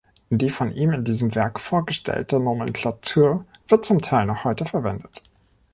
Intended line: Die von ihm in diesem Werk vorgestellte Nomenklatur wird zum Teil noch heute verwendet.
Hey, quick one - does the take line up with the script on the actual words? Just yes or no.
yes